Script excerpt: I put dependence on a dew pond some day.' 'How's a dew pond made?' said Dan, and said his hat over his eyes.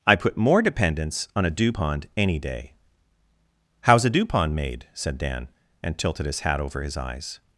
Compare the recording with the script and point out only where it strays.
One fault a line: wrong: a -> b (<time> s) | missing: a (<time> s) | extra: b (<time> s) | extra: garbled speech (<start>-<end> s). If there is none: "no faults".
extra: more (0.4 s)
wrong: some -> any (2.2 s)
wrong: said -> tilted (6.0 s)